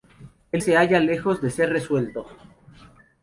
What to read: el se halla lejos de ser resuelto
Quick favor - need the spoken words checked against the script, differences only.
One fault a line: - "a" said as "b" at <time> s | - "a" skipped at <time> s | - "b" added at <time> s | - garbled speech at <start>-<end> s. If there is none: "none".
none